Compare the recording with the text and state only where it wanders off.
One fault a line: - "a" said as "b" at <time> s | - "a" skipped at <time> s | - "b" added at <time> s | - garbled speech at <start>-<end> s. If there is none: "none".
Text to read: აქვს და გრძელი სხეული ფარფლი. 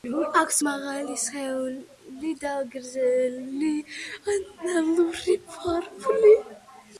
- "მაღალი სხეული" added at 0.6 s
- "სხეული" said as "ანალური" at 4.3 s